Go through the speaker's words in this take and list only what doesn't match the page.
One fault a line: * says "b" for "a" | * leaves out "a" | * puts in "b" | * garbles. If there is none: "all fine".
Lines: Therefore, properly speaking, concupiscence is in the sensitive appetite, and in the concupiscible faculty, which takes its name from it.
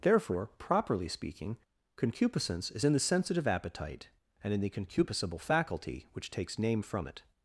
* leaves out "its"